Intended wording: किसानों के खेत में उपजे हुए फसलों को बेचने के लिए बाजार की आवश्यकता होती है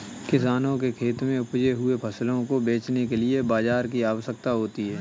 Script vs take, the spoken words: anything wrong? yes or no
no